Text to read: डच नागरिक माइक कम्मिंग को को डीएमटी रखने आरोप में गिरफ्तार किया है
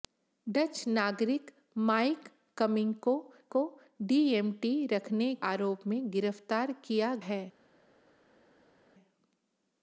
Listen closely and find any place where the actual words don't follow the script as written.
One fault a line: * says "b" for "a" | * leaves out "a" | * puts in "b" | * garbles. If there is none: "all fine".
all fine